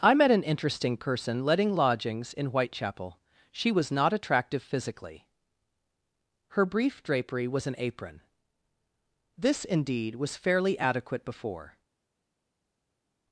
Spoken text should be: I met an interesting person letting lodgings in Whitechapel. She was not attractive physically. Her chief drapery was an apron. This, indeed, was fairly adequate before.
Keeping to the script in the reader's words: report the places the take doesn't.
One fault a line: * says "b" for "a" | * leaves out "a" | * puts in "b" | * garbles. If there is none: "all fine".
* says "brief" for "chief"